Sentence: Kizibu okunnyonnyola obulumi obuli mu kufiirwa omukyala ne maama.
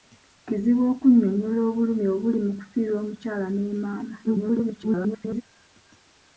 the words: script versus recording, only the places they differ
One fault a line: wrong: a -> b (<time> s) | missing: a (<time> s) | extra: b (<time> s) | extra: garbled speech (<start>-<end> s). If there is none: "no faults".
extra: garbled speech (4.2-5.4 s)